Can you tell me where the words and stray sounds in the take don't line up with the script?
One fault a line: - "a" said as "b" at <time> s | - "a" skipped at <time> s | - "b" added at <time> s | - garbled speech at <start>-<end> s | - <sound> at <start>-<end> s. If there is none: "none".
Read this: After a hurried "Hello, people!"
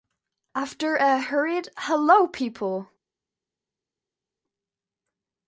none